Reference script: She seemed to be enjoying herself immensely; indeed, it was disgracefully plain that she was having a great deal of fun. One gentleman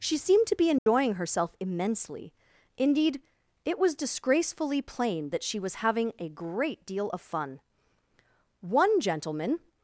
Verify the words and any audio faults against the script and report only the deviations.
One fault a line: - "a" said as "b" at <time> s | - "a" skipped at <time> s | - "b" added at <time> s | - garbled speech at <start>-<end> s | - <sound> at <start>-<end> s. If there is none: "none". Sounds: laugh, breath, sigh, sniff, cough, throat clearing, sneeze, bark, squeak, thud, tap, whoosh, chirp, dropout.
- dropout at 0.8-0.9 s